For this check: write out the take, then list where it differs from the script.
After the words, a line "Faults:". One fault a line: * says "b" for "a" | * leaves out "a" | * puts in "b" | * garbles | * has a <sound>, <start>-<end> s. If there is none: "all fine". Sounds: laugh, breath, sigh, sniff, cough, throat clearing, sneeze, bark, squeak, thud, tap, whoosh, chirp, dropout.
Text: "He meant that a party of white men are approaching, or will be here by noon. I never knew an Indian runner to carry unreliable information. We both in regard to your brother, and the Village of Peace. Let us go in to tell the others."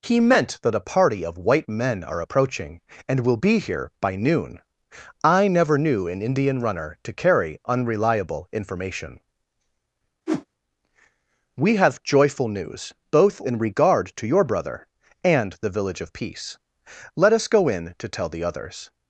"He meant that a party of white men are approaching, and will be here by noon. I never knew an Indian runner to carry unreliable information. We have joyful news, both in regard to your brother, and the Village of Peace. Let us go in to tell the others."
Faults:
* says "and" for "or"
* has a whoosh, 10.3-10.5 s
* puts in "have joyful news"